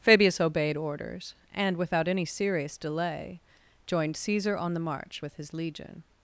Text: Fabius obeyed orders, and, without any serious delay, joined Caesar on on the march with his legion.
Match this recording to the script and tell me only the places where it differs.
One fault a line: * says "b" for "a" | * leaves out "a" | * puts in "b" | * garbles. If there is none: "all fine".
* leaves out "on"